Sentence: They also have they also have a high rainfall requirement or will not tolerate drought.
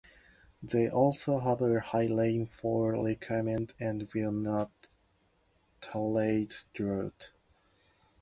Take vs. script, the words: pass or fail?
fail